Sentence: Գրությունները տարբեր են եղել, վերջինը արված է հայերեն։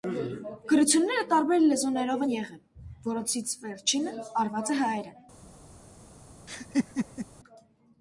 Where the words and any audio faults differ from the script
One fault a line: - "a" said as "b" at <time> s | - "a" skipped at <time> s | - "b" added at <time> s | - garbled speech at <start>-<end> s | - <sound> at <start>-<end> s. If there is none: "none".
- "լեզուներով" added at 1.7 s
- "որոնցից" added at 3.1 s
- laugh at 6.5-7.3 s